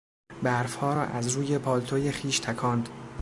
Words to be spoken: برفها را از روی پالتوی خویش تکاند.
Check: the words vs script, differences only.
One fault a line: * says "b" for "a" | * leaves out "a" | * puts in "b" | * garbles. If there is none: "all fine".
all fine